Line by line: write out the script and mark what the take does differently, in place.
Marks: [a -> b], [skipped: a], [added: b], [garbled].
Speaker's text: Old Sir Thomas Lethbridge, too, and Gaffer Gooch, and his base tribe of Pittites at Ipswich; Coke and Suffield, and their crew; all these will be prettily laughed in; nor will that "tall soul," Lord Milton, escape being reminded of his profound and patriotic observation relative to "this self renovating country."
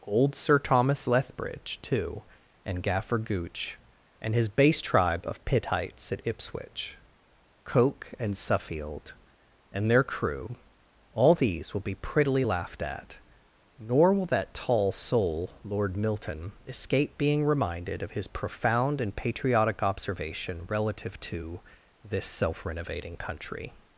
Old Sir Thomas Lethbridge, too, and Gaffer Gooch, and his base tribe of Pittites at Ipswich; Coke and Suffield, and their crew; all these will be prettily laughed [in; -> at] nor will that "tall soul," Lord Milton, escape being reminded of his profound and patriotic observation relative to "this self renovating country."